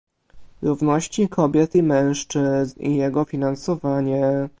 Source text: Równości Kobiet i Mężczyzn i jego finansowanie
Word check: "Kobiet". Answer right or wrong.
right